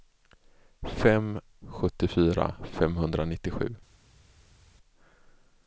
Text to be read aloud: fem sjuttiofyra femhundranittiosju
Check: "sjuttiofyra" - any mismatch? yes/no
no